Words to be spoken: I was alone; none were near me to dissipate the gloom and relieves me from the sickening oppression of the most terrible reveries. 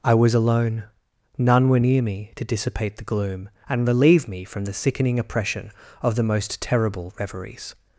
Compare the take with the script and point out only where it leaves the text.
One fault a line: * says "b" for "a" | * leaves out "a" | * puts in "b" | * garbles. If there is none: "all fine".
* says "relieve" for "relieves"